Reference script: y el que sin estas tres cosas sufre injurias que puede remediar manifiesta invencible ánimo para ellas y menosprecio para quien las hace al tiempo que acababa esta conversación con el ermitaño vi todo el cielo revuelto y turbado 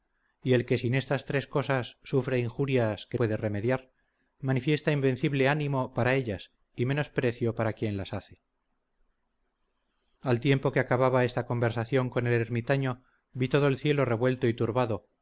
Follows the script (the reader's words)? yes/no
yes